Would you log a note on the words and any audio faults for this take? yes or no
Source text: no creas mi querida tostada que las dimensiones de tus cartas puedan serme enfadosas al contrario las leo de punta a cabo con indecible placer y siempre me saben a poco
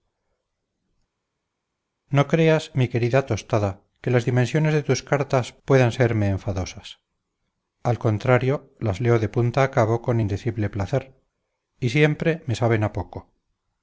no